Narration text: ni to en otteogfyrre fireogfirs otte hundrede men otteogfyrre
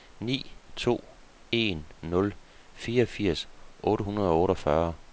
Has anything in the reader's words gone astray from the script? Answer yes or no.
yes